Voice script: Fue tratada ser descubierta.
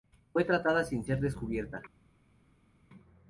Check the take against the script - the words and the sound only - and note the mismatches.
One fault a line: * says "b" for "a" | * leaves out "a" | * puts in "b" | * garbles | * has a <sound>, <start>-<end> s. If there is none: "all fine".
* puts in "sin"